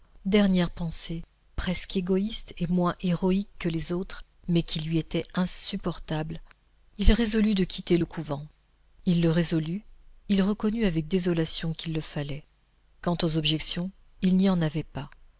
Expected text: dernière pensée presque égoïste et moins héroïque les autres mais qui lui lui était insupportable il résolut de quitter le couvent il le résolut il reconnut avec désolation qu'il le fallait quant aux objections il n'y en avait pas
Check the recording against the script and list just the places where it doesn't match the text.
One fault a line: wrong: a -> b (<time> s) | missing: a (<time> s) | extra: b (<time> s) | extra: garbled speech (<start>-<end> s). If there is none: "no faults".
extra: que (3.6 s)
missing: lui (5.0 s)